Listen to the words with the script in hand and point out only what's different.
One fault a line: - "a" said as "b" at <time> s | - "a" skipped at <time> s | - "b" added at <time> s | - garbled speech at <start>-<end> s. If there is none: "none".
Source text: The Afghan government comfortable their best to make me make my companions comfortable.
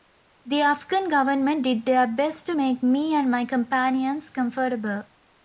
- "comfortable" said as "did" at 1.6 s
- "make" said as "and" at 3.1 s